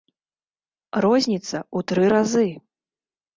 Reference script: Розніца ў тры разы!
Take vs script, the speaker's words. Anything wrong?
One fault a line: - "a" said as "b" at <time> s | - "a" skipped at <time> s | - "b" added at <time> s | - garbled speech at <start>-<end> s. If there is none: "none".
none